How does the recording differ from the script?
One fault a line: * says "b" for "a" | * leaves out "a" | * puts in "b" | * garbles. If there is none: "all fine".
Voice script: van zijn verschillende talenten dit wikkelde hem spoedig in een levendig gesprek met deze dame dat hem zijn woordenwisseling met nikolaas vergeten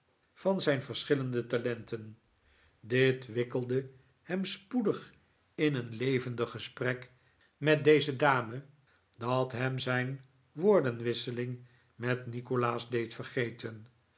* puts in "deed"